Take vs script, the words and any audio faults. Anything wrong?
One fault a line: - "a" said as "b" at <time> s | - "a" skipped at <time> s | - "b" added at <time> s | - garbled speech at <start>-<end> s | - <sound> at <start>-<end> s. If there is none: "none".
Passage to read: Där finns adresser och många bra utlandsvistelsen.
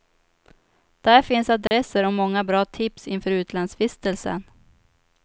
- dropout at 1.7-1.7 s
- "tips inför" added at 2.6 s